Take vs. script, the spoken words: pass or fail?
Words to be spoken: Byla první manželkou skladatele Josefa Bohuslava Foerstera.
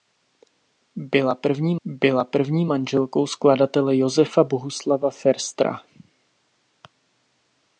fail